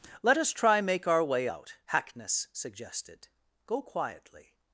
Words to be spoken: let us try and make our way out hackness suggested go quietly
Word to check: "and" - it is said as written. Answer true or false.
false